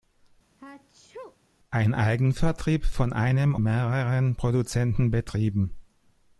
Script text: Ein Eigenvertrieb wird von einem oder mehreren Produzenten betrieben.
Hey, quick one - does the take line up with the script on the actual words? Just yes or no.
no